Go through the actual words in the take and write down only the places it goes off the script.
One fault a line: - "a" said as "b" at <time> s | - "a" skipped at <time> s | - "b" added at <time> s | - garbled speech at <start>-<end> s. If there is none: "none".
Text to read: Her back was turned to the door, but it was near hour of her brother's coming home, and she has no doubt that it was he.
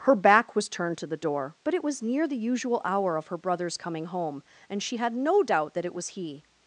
- "the usual" added at 2.3 s
- "has" said as "had" at 5.0 s